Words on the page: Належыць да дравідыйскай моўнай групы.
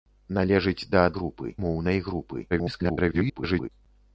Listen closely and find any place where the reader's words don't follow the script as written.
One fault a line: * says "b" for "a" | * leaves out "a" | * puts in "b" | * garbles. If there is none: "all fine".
* says "групы" for "дравідыйскай"
* garbles